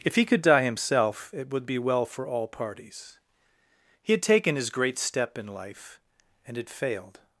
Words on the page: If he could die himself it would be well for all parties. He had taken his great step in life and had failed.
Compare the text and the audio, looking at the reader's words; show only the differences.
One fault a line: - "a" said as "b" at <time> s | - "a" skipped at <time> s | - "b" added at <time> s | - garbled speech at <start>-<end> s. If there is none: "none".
none